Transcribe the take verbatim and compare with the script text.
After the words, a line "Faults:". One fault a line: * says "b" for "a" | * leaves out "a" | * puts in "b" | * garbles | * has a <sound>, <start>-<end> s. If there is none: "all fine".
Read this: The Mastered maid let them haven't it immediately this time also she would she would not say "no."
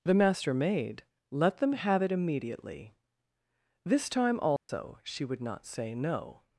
The Master maid let them have it immediately this time also she would not say "no."
Faults:
* says "Master" for "Mastered"
* says "have" for "haven't"
* has a dropout, 4.6-4.7 s
* leaves out "she would"